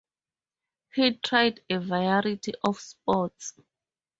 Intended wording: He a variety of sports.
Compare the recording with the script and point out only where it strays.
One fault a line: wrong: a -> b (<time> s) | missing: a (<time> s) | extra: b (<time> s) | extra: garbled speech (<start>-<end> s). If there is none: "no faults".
extra: tried (1.2 s)